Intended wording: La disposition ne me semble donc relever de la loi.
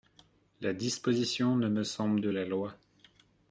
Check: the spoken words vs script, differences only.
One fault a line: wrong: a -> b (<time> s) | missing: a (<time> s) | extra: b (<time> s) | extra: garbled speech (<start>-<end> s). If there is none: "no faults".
missing: donc relever (2.2 s)